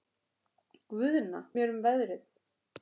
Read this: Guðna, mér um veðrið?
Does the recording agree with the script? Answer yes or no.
yes